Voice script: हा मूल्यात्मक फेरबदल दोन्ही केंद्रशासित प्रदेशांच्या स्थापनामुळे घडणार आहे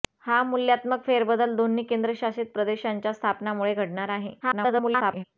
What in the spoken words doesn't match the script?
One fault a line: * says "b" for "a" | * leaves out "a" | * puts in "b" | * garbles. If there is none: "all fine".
* garbles